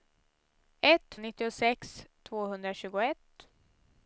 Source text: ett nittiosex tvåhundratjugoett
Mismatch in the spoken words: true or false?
false